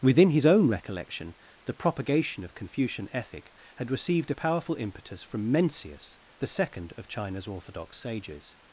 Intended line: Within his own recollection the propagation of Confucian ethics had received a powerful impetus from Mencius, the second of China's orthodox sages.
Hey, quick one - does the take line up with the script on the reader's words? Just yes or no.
no